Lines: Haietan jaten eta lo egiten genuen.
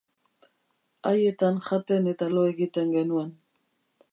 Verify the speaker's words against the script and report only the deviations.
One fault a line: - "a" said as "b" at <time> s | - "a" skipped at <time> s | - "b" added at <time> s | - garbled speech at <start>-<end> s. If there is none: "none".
none